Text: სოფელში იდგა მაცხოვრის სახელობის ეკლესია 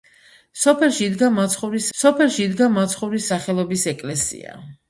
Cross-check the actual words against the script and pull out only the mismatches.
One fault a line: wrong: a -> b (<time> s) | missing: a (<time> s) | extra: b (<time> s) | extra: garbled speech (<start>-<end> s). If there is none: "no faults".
extra: სოფელში იდგა მაცხოვრის (2.0 s)